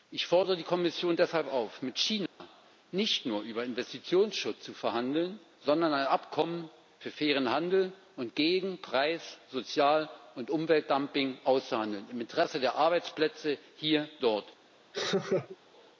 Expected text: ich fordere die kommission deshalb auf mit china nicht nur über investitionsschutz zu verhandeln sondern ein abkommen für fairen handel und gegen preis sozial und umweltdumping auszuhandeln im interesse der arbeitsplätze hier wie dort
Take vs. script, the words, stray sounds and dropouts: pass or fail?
fail